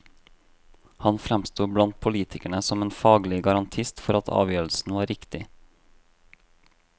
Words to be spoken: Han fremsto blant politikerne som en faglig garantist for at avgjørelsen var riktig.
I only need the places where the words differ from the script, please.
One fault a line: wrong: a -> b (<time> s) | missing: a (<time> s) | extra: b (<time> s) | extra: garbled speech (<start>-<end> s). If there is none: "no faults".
no faults